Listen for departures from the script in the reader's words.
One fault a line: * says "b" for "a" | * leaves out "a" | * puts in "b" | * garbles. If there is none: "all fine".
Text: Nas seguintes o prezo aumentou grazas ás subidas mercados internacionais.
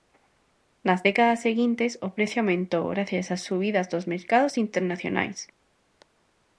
* puts in "décadas"
* puts in "dos"